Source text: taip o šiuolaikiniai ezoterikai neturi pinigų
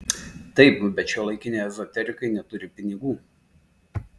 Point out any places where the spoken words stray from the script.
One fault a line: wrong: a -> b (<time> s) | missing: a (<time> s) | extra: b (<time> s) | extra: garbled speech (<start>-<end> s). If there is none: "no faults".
wrong: o -> bet (1.0 s)